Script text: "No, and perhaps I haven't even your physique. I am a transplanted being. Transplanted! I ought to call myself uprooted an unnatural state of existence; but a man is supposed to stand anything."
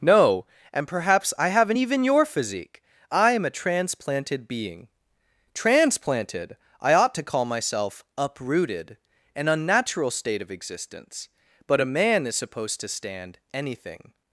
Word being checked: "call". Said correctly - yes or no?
yes